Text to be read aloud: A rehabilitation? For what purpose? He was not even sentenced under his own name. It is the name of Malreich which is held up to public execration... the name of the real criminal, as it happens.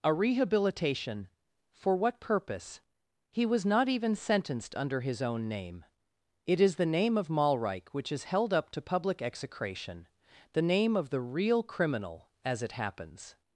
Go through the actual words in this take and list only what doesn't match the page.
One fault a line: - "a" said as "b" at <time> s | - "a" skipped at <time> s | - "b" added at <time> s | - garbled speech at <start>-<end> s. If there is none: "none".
none